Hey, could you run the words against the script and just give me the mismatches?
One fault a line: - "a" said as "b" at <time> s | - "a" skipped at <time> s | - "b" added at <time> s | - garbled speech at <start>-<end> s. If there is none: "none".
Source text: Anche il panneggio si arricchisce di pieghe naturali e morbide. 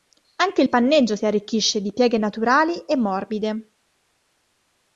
none